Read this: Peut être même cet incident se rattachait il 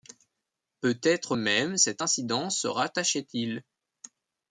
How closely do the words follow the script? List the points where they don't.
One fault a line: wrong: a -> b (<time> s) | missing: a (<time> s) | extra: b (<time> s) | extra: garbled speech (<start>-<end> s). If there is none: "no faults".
no faults